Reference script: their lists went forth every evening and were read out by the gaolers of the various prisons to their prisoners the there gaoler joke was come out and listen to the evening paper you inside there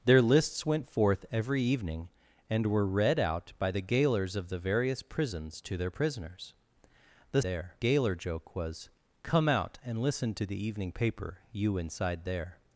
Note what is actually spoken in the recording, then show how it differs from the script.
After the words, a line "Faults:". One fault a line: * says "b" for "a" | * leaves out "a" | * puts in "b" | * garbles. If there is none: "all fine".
their lists went forth every evening and were read out by the gaolers of the various prisons to their prisoners the there gaoler joke was come out and listen to the evening paper you inside there
Faults:
all fine